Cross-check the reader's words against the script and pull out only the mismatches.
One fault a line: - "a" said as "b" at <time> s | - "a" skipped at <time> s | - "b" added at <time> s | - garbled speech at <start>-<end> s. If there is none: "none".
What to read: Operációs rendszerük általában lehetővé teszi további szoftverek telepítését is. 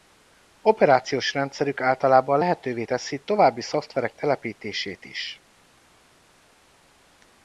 none